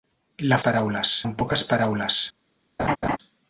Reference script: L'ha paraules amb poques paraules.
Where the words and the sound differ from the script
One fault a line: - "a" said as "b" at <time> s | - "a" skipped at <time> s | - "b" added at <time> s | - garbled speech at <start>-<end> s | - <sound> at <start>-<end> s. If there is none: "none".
- laugh at 2.8-3.2 s